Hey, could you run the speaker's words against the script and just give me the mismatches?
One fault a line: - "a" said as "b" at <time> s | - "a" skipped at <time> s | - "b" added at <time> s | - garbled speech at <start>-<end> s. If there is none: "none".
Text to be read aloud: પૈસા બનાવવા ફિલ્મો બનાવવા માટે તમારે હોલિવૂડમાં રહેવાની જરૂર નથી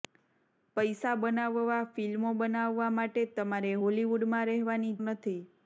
- "જરૂર" skipped at 4.9 s